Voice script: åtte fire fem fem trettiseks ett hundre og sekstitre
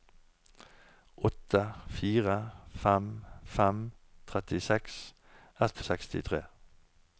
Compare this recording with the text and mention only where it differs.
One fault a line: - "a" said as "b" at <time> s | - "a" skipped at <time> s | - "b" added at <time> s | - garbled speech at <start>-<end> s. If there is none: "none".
- "hundre" skipped at 5.8 s